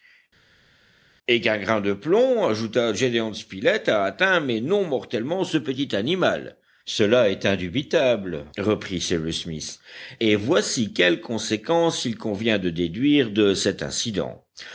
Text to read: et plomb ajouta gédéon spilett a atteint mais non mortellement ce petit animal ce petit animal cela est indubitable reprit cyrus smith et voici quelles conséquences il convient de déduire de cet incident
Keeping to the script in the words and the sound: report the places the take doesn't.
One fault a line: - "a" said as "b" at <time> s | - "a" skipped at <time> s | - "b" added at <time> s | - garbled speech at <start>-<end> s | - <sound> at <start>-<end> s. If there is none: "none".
- "qu'un grain de" added at 1.4 s
- "ce petit animal" skipped at 6.6 s